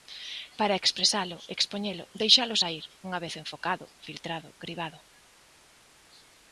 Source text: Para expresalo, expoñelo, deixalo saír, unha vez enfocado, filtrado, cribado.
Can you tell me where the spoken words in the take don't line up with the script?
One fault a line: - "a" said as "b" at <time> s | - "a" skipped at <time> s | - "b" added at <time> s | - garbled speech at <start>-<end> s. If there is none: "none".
none